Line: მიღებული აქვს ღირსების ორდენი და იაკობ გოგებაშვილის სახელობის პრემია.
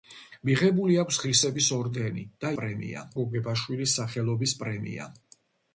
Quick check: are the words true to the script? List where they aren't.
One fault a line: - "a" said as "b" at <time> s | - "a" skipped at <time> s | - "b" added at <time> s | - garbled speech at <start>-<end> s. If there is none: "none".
- "იაკობ" said as "პრემია" at 2.6 s